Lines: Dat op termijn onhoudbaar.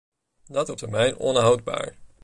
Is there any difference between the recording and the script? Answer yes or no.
no